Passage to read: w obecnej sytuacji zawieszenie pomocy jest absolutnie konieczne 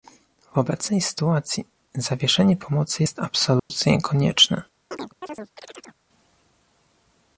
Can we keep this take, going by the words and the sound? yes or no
no